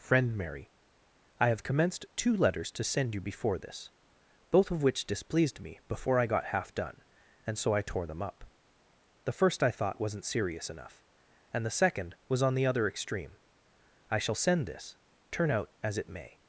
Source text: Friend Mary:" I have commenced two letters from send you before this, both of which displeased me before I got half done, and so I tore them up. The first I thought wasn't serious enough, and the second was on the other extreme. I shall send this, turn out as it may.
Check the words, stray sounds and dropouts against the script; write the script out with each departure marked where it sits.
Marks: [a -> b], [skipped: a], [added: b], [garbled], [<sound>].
Friend Mary:" I have commenced two letters [from -> to] send you before this, both of which displeased me before I got half done, and so I tore them up. The first I thought wasn't serious enough, and the second was on the other extreme. I shall send this, turn out as it may.